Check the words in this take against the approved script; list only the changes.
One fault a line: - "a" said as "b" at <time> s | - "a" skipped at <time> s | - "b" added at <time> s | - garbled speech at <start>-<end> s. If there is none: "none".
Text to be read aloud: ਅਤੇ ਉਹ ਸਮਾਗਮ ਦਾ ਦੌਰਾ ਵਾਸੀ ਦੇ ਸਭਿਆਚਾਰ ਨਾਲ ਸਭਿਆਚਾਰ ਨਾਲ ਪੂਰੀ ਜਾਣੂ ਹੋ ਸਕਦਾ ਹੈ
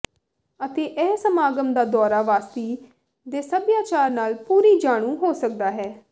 - "ਉਹ" said as "ਇਹ" at 0.8 s
- "ਸਭਿਆਚਾਰ ਨਾਲ" skipped at 4.3 s